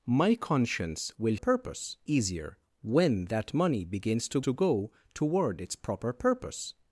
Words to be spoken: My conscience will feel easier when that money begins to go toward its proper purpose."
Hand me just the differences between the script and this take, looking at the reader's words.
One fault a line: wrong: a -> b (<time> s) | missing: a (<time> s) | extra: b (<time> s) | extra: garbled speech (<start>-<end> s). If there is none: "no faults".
wrong: feel -> purpose (1.3 s)
extra: to (4.4 s)